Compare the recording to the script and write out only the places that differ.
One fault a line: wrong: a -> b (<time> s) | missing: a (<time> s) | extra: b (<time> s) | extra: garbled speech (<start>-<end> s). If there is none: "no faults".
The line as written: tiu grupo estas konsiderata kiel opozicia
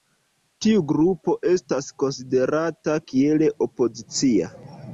no faults